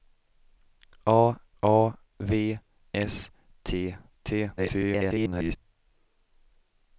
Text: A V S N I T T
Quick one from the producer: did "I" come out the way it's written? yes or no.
no